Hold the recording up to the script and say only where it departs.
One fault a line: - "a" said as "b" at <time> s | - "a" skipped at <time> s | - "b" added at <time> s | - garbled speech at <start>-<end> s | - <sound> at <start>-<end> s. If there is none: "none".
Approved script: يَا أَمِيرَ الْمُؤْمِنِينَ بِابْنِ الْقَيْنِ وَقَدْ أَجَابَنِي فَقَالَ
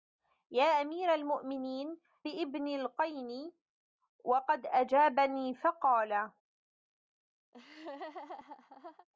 - laugh at 7.5-9.1 s